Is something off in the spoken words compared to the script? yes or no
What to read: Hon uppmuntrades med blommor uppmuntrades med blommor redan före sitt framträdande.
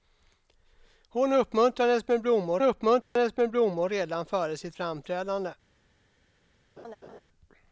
no